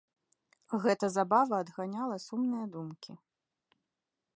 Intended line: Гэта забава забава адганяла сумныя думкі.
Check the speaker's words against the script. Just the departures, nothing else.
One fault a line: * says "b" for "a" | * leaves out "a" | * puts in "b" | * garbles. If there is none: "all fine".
* leaves out "забава"